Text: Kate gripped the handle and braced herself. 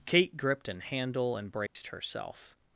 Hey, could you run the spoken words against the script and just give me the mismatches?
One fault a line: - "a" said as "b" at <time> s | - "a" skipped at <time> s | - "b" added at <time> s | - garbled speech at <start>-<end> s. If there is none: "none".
- "the" said as "an" at 0.7 s